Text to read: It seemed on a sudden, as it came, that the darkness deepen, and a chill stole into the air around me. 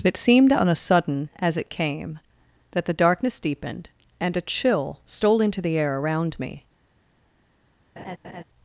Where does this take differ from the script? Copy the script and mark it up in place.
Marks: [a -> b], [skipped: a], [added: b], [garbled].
It seemed on a sudden, as it came, that the darkness [deepen, -> deepened] and a chill stole into the air around me.